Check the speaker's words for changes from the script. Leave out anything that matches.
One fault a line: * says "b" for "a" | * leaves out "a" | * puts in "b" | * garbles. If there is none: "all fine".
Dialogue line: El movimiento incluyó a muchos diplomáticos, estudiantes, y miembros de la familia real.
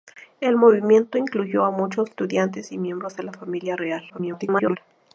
* leaves out "diplomáticos"
* garbles